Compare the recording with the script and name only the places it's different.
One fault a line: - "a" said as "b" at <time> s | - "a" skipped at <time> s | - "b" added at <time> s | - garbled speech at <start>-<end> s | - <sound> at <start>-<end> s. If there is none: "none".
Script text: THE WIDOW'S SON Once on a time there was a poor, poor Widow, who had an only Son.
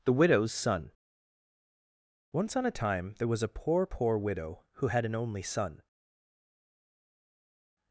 none